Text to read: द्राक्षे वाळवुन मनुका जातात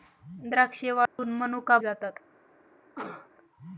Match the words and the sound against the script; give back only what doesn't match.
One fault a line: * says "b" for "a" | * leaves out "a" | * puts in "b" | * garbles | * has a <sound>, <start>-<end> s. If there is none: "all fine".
* has a dropout, 1.1-1.2 s
* has a cough, 3.0-3.3 s